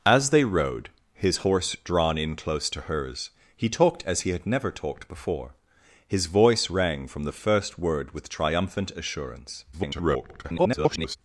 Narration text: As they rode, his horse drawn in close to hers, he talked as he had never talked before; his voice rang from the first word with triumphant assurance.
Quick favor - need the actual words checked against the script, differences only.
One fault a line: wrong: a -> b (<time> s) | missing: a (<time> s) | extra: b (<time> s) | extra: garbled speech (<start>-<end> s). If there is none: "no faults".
extra: garbled speech (9.7-11.2 s)